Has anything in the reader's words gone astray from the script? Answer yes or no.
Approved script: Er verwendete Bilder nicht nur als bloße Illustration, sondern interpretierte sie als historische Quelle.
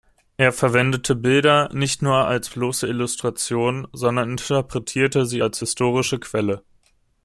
no